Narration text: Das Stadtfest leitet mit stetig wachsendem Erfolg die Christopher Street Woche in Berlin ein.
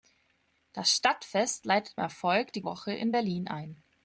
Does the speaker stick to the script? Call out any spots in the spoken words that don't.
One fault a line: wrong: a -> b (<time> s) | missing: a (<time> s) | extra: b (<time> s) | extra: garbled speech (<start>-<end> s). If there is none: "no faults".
missing: mit stetig wachsendem (2.0 s)
missing: Christopher Street (2.6 s)